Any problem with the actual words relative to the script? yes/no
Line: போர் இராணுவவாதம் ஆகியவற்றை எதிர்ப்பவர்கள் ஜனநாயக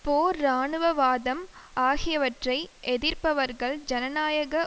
no